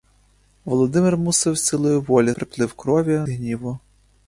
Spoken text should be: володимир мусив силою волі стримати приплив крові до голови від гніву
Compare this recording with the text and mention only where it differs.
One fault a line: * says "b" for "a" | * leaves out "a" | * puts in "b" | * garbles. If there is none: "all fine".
* leaves out "стримати"
* leaves out "до голови від"